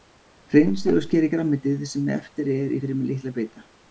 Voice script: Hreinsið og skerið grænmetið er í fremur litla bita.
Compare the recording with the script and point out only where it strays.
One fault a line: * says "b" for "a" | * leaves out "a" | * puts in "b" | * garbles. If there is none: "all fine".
* puts in "sem eftir"